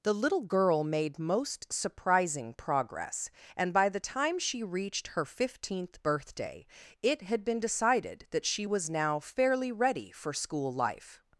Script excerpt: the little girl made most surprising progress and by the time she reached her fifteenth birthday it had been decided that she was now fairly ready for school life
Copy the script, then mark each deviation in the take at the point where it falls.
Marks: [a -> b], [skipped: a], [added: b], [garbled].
the little girl made most surprising progress and by the time she reached her fifteenth birthday it had been decided that she was now fairly ready for school life